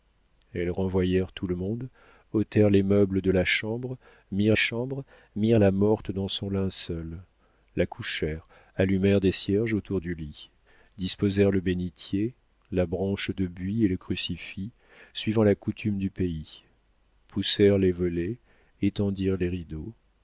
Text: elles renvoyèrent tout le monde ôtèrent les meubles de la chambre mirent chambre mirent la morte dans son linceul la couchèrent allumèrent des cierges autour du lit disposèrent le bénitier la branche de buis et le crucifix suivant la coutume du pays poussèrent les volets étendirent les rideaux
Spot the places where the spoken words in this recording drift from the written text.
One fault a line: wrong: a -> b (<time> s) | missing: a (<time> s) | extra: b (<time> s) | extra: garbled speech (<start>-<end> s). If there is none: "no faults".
no faults